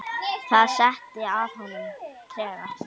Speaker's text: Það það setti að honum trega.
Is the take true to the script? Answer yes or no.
no